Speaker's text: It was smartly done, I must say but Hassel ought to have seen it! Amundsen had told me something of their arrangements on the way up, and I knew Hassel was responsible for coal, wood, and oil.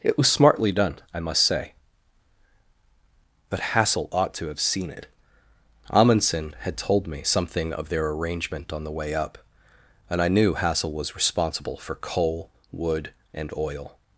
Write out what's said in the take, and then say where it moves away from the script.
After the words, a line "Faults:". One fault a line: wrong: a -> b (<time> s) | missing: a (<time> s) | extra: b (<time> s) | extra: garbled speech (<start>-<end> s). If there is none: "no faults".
It was smartly done, I must say but Hassel ought to have seen it! Amundsen had told me something of their arrangement on the way up, and I knew Hassel was responsible for coal, wood, and oil.
Faults:
wrong: arrangements -> arrangement (8.1 s)